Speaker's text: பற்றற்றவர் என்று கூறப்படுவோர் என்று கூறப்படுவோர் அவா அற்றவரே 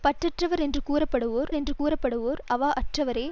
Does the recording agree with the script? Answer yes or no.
yes